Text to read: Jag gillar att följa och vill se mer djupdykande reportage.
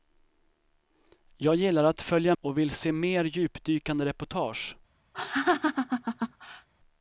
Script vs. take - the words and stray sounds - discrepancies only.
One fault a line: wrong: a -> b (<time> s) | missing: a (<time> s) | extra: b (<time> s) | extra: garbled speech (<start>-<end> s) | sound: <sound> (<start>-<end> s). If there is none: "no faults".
sound: laugh (5.1-6.7 s)